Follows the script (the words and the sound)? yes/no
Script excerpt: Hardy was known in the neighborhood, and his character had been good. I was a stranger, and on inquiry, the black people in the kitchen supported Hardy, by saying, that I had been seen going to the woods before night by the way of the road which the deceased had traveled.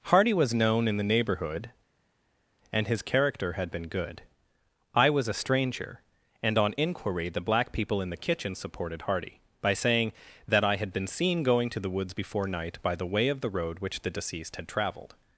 yes